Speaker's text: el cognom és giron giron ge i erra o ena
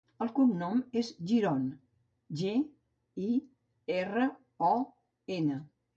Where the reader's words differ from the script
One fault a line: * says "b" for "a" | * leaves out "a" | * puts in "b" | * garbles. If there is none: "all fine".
* leaves out "giron"